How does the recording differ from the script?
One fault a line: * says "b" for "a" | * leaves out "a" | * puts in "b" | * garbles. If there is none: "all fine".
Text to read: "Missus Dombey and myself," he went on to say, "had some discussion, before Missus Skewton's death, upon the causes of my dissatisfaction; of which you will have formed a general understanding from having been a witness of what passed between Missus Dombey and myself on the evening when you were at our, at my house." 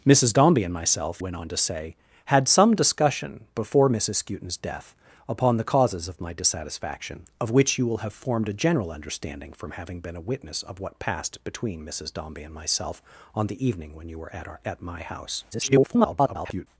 * leaves out "he"
* garbles